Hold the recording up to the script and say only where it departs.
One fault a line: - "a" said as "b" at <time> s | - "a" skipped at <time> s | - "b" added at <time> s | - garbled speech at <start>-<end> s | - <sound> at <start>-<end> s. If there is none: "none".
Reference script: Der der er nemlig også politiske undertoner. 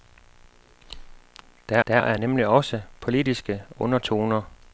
none